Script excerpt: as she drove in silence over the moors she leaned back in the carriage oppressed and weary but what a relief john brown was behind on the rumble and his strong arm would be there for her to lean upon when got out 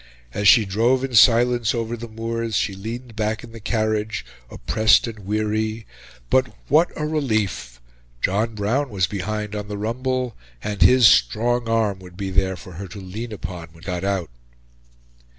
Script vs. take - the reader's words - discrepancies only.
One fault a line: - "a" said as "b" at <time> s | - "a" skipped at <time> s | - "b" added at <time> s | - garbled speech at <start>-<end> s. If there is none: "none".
none